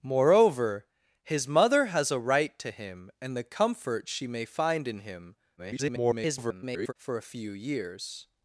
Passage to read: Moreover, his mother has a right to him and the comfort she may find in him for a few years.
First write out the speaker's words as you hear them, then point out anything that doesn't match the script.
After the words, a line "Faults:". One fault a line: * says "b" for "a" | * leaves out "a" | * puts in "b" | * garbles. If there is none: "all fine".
Moreover, his mother has a right to him and the comfort she may find in him [garbled] for a few years.
Faults:
* garbles